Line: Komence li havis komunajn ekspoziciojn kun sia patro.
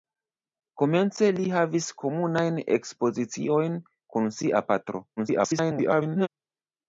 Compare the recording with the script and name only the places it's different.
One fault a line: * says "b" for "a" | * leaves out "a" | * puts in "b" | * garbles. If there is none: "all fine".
* garbles